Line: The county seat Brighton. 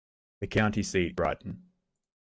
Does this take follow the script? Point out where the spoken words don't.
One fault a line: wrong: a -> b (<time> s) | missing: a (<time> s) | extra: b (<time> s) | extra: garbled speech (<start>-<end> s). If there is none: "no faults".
no faults